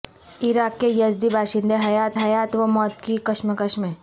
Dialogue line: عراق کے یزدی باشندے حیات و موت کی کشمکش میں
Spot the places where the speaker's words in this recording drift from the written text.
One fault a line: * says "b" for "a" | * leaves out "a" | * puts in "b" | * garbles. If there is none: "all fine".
* puts in "حیات"